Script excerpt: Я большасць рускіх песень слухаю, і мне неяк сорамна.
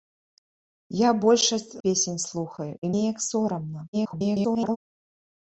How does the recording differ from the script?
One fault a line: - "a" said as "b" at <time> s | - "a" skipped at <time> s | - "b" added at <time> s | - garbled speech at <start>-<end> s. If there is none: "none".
- "рускіх" skipped at 1.8 s
- "мне" skipped at 2.9 s
- garbled speech at 3.9-4.8 s